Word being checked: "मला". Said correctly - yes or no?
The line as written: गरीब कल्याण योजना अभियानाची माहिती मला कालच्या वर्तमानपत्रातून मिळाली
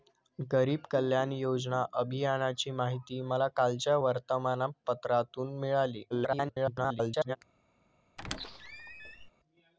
yes